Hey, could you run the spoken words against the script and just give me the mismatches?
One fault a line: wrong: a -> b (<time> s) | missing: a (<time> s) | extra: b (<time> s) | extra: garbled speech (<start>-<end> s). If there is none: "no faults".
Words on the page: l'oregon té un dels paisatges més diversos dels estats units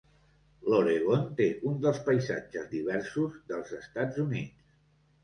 missing: més (2.7 s)